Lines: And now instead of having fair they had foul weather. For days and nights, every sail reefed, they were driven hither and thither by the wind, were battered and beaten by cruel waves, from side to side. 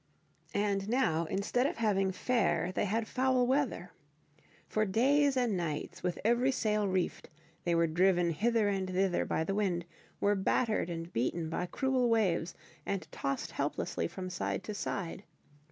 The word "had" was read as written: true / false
true